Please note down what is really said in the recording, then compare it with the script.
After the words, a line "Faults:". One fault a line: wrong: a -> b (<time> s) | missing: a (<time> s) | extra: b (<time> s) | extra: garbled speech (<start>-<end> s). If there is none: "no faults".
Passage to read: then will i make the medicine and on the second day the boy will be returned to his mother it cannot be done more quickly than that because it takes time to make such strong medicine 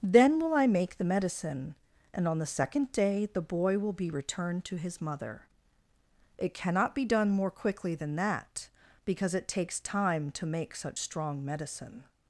then will i make the medicine and on the second day the boy will be returned to his mother it cannot be done more quickly than that because it takes time to make such strong medicine
Faults:
no faults